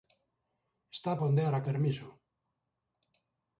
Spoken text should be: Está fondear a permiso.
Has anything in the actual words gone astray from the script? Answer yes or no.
no